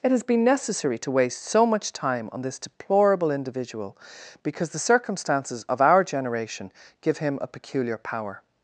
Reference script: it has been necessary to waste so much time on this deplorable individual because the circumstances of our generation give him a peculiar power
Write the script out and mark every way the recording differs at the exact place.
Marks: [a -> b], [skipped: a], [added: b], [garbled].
it has been necessary to waste so much time on this deplorable individual because the circumstances of our generation give him a peculiar power